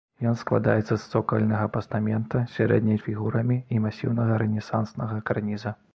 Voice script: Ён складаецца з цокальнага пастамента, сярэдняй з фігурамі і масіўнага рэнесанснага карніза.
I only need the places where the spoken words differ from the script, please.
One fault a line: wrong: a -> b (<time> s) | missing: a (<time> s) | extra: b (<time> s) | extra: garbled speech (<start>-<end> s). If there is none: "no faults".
no faults